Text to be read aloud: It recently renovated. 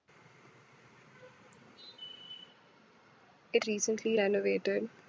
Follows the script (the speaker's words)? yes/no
yes